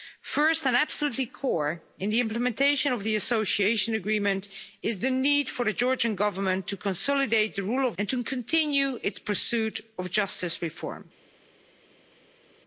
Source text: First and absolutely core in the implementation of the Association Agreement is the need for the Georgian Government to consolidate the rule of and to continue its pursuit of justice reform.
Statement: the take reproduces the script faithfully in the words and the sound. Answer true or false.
true